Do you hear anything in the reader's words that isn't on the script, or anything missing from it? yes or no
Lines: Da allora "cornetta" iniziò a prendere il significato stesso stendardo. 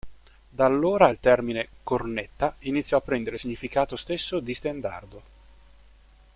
yes